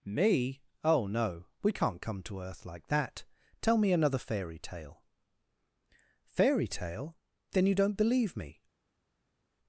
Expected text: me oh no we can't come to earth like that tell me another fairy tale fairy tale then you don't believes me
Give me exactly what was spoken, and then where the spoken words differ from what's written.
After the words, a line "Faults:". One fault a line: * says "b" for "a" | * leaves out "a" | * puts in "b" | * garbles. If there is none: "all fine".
me oh no we can't come to earth like that tell me another fairy tale fairy tale then you don't believe me
Faults:
* says "believe" for "believes"